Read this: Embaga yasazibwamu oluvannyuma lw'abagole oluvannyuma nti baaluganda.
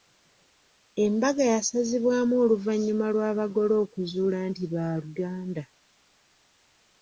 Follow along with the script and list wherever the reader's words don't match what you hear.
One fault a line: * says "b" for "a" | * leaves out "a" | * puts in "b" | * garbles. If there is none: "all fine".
* says "okuzuula" for "oluvannyuma"